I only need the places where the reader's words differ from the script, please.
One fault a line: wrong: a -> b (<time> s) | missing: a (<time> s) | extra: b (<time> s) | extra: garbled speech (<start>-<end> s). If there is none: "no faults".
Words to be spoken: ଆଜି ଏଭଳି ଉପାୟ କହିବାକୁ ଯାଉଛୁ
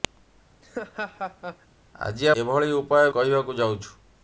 no faults